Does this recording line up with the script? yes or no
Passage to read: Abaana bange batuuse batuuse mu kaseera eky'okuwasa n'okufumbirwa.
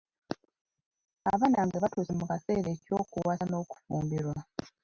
no